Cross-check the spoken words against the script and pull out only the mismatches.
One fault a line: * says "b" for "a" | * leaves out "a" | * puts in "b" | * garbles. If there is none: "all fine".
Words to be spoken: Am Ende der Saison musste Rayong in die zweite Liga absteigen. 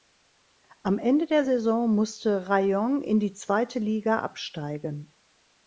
all fine